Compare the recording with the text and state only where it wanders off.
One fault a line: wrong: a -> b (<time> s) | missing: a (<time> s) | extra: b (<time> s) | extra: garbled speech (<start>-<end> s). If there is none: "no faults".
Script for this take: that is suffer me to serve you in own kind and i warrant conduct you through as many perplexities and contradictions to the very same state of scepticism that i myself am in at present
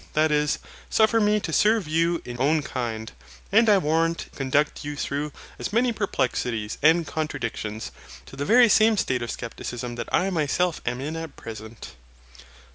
no faults